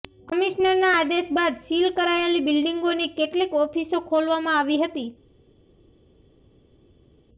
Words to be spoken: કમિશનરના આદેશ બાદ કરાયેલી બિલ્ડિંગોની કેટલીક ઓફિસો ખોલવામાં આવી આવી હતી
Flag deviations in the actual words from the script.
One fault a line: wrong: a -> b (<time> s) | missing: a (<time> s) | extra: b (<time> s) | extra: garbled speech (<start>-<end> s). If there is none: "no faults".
extra: સીલ (1.6 s)
missing: આવી (4.8 s)